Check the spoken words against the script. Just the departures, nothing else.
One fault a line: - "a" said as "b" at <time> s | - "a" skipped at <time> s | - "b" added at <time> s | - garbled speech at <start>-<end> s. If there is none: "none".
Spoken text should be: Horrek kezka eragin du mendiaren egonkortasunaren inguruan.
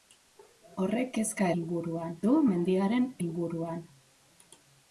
- "eragin" said as "inguruan" at 1.6 s
- "egonkortasunaren" skipped at 3.1 s